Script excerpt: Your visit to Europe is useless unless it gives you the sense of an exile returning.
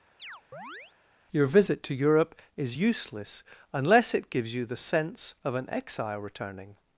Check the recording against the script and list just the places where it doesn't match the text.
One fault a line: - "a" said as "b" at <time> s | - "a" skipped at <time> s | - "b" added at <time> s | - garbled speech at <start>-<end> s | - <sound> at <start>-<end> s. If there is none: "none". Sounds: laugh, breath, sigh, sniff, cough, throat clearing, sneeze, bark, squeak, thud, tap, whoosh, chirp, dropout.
- chirp at 0.2-0.9 s